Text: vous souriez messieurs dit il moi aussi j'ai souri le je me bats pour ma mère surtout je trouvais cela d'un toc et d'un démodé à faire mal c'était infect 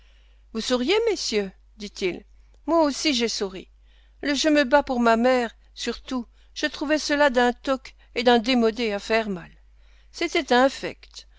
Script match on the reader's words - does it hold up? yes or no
yes